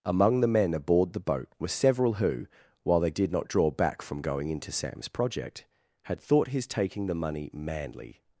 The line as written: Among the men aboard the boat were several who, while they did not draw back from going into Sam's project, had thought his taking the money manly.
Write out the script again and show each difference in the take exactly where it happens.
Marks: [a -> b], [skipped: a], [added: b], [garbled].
Among the men aboard the boat were several who, while they did not draw back from going into Sam's project, had thought his taking the money manly.